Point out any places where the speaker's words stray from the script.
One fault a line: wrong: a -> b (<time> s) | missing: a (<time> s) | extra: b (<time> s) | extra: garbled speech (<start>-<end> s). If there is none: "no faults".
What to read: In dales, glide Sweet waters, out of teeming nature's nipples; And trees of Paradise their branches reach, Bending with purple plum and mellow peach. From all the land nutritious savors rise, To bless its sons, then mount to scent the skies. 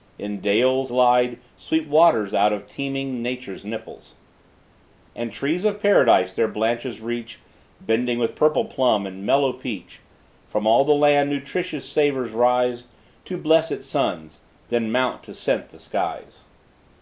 no faults